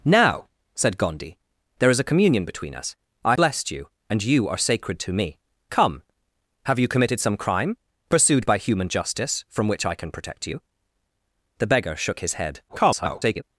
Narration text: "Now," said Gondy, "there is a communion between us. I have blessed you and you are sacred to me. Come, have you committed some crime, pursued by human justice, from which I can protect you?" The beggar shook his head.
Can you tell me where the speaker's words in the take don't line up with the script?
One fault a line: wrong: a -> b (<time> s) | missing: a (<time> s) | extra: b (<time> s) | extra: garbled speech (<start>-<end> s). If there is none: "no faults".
missing: have (3.4 s)
extra: garbled speech (12.7-13.4 s)